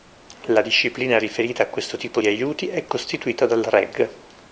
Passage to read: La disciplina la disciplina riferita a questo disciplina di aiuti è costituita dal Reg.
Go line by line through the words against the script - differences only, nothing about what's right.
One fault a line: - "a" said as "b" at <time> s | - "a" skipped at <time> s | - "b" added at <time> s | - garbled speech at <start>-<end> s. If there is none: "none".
- "la disciplina" skipped at 1.2 s
- "disciplina" said as "tipo" at 2.0 s